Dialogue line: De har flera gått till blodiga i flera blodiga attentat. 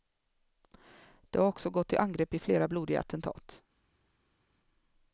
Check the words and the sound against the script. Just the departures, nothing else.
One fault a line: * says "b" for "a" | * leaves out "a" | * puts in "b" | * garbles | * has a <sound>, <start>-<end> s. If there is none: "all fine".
* says "också" for "flera"
* says "angrepp" for "blodiga"